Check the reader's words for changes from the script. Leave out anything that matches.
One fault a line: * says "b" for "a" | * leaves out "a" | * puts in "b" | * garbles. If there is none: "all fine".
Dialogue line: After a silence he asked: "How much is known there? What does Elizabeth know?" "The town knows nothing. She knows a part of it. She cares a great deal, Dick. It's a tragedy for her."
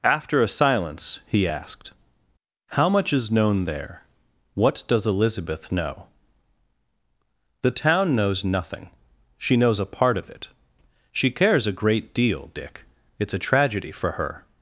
all fine